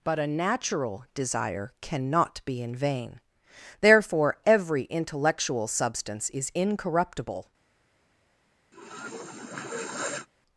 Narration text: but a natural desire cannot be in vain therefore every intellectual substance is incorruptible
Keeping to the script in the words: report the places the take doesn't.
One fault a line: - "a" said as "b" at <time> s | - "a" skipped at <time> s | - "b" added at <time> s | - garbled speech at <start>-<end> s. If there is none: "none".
none